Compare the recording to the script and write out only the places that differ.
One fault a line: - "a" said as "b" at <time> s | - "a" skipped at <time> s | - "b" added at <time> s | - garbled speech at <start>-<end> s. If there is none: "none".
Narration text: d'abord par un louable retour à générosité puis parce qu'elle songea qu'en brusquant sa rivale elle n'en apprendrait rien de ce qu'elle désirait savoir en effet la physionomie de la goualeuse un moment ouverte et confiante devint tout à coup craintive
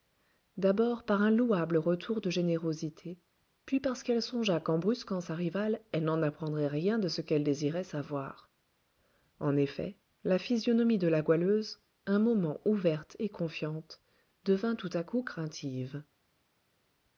- "à" said as "de" at 2.2 s